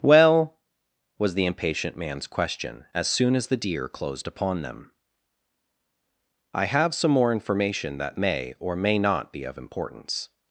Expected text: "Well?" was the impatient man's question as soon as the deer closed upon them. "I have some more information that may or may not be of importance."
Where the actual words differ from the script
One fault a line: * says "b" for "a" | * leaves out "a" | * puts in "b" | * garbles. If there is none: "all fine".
all fine